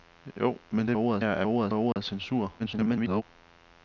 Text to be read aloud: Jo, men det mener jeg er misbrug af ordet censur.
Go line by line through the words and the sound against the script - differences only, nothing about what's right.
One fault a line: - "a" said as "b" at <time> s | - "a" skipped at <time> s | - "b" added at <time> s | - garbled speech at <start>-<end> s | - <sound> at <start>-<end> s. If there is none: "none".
- "mener" said as "ordet" at 1.0 s
- "misbrug" said as "ordet" at 1.5 s
- dropout at 1.9-2.0 s
- garbled speech at 2.6-3.2 s